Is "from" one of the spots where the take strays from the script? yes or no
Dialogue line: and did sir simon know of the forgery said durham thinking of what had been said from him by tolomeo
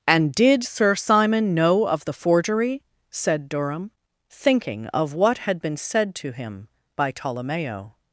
yes